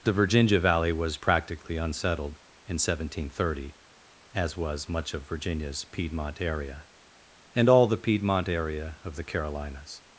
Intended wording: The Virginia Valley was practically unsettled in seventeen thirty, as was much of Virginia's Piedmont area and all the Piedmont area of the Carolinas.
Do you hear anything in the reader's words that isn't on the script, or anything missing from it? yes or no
no